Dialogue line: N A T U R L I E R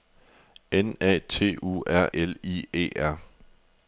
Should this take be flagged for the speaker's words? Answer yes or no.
no